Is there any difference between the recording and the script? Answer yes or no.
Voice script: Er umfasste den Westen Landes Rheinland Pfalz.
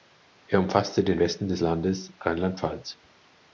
yes